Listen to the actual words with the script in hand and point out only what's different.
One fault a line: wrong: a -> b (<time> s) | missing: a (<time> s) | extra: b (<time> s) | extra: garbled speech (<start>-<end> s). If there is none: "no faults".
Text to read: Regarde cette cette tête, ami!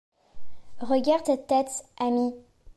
missing: cette (1.5 s)